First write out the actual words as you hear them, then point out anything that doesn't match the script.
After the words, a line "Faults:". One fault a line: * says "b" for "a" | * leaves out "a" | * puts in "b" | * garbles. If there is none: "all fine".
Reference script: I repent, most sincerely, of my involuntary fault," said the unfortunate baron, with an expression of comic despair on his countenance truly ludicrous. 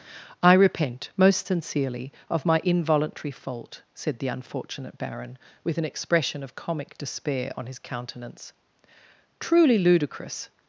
I repent, most sincerely, of my involuntary fault," said the unfortunate baron, with an expression of comic despair on his countenance truly ludicrous.
Faults:
all fine